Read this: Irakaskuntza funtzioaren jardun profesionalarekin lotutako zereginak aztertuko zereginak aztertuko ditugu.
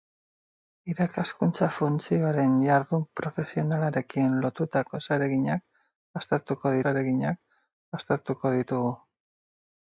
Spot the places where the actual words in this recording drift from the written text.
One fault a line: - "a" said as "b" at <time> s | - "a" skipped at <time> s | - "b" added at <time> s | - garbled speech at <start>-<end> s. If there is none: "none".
none